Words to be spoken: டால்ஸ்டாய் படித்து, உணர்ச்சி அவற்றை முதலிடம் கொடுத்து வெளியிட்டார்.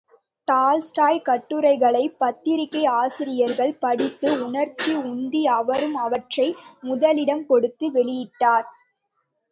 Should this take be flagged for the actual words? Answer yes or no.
yes